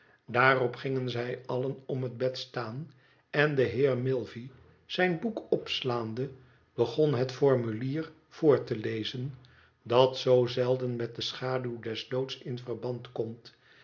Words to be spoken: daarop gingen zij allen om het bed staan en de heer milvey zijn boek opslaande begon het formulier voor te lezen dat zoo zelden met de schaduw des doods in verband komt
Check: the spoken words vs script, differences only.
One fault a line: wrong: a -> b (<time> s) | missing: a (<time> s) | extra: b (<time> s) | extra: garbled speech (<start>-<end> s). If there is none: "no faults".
no faults